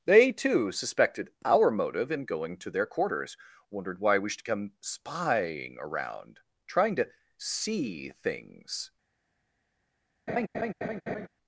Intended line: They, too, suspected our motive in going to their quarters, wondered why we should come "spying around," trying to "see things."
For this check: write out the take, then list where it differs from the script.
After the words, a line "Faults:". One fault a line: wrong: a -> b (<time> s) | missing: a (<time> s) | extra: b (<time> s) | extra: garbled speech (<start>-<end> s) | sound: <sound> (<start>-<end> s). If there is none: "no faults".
They, too, suspected our motive in going to their quarters, wondered why we should come "spying around," trying to "see things."
Faults:
sound: laugh (10.3-11.3 s)